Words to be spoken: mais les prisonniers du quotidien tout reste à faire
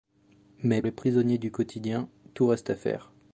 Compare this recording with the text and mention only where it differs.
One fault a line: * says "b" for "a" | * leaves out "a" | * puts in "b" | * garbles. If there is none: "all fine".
all fine